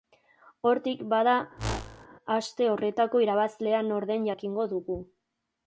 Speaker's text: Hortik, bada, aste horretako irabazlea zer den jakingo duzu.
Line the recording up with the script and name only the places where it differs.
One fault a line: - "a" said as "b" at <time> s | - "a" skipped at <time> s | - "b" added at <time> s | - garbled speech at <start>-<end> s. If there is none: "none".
- "zer" said as "nor" at 3.9 s
- "duzu" said as "dugu" at 4.7 s